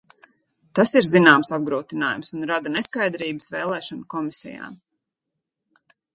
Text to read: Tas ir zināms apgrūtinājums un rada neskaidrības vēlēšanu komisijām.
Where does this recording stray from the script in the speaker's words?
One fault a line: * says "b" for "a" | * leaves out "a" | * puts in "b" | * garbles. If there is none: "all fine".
all fine